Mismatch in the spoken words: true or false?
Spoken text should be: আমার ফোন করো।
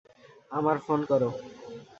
false